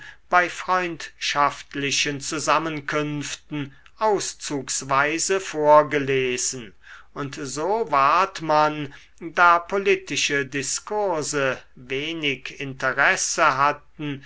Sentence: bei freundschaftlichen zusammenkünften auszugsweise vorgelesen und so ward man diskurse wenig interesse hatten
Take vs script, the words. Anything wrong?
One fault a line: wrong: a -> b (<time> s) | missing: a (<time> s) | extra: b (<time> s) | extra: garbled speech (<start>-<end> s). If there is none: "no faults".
extra: da politische (9.2 s)